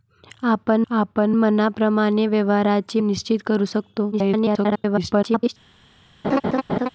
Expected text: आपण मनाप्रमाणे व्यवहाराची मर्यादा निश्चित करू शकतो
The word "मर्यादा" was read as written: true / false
false